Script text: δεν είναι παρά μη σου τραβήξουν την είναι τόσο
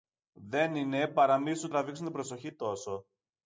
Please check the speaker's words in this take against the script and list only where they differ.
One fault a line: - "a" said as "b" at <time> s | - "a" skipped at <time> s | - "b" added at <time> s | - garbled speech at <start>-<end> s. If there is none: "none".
- "είναι" said as "προσοχή" at 2.1 s